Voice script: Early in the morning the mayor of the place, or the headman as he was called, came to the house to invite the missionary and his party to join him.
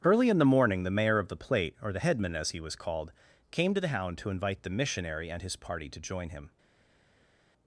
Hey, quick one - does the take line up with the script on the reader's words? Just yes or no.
no